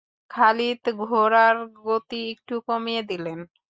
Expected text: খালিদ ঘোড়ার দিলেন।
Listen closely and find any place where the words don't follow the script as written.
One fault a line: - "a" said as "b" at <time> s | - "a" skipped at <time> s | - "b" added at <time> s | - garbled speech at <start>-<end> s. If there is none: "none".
- "গতি একটু কমিয়ে" added at 1.9 s